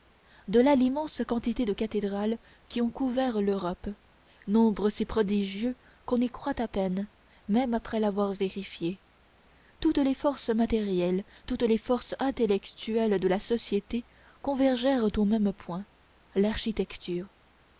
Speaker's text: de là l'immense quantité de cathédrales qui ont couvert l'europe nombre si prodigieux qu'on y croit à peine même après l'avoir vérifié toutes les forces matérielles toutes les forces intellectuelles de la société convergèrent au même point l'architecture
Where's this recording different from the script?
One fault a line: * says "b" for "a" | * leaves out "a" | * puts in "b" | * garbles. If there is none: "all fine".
all fine